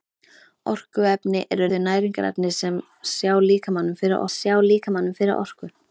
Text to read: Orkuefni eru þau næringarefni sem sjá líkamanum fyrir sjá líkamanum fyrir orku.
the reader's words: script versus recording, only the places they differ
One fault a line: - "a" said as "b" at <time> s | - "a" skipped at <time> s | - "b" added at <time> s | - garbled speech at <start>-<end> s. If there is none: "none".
none